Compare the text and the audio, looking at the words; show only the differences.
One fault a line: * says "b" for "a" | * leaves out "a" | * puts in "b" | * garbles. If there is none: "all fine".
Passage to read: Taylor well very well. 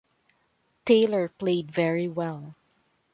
* says "played" for "well"